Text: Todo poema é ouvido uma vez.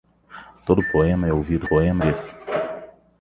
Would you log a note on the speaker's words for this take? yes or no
yes